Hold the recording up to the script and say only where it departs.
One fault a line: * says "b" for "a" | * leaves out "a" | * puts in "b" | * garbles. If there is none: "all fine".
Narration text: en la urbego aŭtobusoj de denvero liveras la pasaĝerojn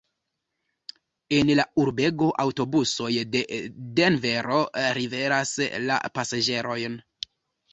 all fine